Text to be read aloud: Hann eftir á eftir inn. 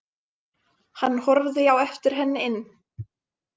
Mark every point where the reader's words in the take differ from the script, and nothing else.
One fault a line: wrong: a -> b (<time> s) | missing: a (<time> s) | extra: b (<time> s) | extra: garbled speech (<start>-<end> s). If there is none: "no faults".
wrong: eftir -> horfði (1.3 s)
extra: henni (2.2 s)